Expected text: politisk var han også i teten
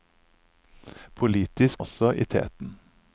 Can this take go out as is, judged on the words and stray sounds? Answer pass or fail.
fail